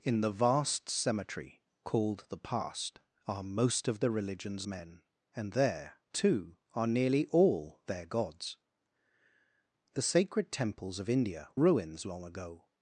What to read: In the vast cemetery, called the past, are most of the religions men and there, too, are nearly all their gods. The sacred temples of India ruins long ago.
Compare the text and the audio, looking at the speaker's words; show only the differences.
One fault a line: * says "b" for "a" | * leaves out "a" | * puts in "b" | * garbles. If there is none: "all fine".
all fine